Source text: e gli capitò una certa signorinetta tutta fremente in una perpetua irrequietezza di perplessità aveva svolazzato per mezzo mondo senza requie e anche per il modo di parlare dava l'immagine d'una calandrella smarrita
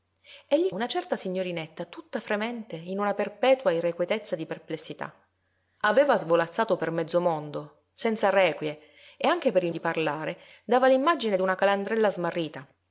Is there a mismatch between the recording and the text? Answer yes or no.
yes